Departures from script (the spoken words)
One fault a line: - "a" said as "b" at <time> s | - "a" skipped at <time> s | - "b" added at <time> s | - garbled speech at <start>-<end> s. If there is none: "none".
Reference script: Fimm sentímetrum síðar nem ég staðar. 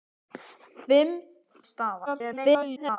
- "sentímetrum síðar nem" skipped at 1.1 s
- garbled speech at 2.1-3.0 s